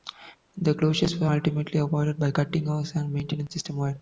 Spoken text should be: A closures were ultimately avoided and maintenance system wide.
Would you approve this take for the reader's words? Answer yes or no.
no